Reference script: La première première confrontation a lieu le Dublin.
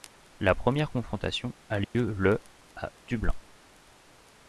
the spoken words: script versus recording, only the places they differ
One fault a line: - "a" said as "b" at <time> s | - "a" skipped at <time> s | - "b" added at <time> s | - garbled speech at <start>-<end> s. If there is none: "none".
- "première" skipped at 0.9 s
- "à" added at 2.8 s